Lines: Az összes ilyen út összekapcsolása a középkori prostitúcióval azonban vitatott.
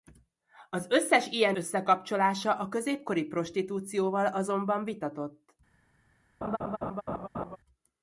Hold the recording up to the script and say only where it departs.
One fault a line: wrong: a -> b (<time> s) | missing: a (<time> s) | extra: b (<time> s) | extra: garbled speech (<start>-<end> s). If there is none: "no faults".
missing: út (1.6 s)